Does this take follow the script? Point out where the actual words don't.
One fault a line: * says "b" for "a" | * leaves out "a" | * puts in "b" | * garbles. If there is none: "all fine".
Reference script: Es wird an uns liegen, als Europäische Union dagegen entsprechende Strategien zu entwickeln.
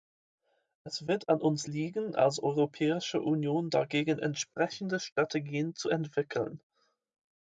all fine